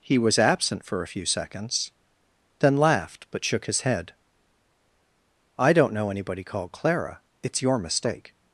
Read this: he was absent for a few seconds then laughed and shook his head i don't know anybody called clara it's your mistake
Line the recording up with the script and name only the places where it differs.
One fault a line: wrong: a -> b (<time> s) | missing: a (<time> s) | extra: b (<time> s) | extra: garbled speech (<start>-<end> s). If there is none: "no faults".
wrong: and -> but (3.3 s)